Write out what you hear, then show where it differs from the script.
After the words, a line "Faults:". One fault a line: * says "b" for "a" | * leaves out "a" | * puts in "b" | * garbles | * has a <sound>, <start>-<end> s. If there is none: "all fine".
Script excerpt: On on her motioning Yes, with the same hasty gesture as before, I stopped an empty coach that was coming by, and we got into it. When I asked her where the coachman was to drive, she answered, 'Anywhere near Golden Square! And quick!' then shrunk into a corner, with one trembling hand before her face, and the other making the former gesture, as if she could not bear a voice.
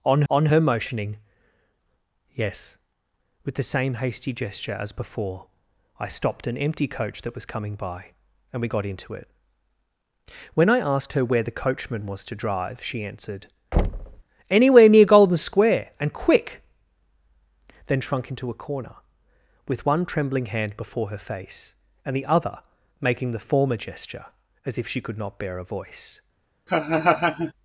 On on her motioning Yes, with the same hasty gesture as before, I stopped an empty coach that was coming by, and we got into it. When I asked her where the coachman was to drive, she answered, 'Anywhere near Golden Square! And quick!' then shrunk into a corner, with one trembling hand before her face, and the other making the former gesture, as if she could not bear a voice.
Faults:
* has a thud, 13.7-14.2 s
* has a laugh, 26.7-27.5 s